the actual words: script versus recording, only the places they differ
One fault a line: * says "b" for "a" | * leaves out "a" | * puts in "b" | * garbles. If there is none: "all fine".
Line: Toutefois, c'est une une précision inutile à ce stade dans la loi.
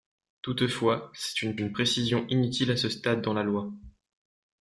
all fine